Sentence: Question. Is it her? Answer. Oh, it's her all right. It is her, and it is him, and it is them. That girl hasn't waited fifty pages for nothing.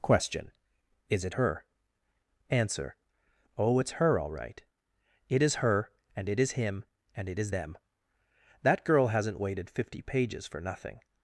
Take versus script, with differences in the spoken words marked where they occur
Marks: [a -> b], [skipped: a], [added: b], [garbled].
Question. Is it her? Answer. Oh, it's her all right. It is her, and it is him, and it is them. That girl hasn't waited fifty pages for nothing.